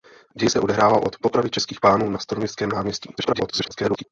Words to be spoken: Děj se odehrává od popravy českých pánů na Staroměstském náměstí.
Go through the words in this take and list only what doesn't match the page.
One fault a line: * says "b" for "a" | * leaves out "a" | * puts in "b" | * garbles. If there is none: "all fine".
* garbles